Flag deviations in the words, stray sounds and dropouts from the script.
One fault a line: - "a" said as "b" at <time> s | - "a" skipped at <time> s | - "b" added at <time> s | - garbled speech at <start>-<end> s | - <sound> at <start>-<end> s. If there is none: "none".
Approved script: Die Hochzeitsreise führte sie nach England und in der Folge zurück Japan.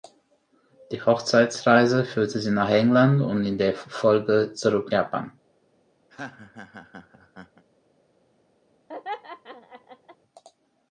- laugh at 6.1-7.6 s
- laugh at 8.9-10.2 s